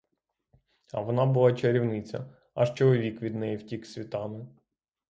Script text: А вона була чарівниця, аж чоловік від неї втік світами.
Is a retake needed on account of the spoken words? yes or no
no